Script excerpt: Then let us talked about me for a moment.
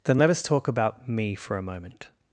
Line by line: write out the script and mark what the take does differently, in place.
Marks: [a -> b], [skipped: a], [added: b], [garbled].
Then let us [talked -> talk] about me for a moment.